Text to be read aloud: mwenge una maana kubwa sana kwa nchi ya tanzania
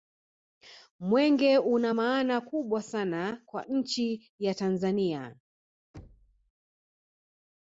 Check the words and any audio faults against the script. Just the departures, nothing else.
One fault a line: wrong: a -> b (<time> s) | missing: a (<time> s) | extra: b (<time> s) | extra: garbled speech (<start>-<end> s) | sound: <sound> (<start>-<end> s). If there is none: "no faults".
sound: thud (5.9-6.5 s)